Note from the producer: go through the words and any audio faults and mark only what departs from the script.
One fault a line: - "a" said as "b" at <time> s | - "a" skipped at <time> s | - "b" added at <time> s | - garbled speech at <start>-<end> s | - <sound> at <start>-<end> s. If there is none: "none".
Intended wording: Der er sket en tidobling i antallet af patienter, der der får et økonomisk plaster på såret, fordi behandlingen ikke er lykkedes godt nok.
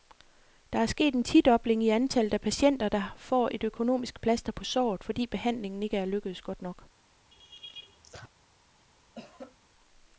- "der" skipped at 3.1 s
- laugh at 7.3-8.3 s
- cough at 9.1-9.6 s